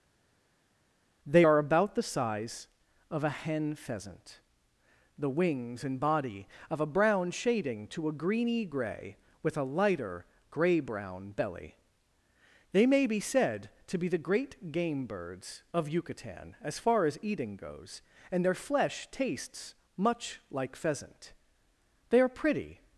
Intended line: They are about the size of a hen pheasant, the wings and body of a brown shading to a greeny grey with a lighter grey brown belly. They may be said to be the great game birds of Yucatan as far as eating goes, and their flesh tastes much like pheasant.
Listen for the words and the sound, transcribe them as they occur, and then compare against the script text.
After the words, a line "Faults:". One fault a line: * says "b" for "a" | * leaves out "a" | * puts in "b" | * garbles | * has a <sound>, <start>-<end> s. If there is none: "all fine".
They are about the size of a hen pheasant, the wings and body of a brown shading to a greeny grey with a lighter grey brown belly. They may be said to be the great game birds of Yucatan as far as eating goes, and their flesh tastes much like pheasant. They are pretty
Faults:
* puts in "They are pretty"